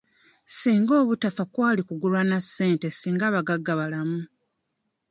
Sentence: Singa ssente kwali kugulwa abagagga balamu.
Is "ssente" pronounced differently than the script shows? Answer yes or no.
yes